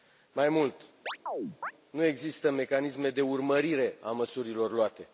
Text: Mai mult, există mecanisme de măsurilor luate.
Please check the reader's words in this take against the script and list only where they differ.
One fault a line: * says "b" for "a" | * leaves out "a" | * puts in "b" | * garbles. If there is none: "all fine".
* puts in "nu"
* puts in "urmărire a"